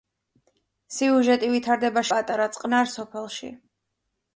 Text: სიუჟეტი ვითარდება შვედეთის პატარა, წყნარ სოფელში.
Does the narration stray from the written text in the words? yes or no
yes